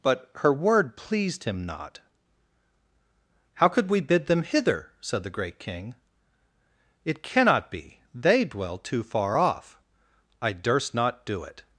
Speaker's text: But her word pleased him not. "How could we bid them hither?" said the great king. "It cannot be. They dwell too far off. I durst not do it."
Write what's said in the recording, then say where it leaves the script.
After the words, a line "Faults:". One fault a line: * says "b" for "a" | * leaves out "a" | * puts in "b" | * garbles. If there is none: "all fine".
But her word pleased him not. "How could we bid them hither?" said the great king. "It cannot be. They dwell too far off. I durst not do it."
Faults:
all fine